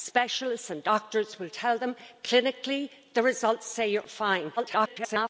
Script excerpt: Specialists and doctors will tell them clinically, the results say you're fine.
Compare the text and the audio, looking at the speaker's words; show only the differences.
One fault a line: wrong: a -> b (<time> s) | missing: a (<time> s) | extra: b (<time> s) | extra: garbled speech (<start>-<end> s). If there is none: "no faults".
extra: garbled speech (4.6-5.3 s)